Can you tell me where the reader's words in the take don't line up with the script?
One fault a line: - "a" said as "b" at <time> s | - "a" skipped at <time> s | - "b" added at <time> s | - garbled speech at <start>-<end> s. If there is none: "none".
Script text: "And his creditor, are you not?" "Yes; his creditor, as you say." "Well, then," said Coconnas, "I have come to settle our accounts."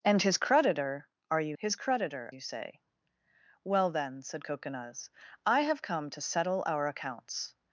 - "not Yes" skipped at 1.6 s
- "as" skipped at 2.3 s